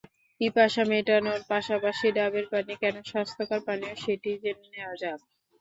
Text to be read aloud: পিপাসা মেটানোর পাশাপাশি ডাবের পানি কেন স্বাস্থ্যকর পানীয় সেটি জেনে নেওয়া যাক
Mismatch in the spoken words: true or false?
false